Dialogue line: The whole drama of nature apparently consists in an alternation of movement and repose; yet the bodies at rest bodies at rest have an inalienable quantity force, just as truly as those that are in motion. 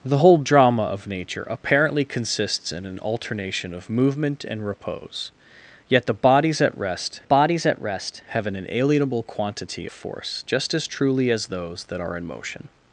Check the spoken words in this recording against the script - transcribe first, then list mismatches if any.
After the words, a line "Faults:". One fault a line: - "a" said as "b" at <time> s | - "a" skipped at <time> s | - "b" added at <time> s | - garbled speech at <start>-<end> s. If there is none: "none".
The whole drama of nature apparently consists in an alternation of movement and repose; yet the bodies at rest bodies at rest have an inalienable quantity force, just as truly as those that are in motion.
Faults:
none